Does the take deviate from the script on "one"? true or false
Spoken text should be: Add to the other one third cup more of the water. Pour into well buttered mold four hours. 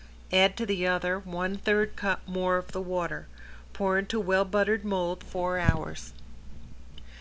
false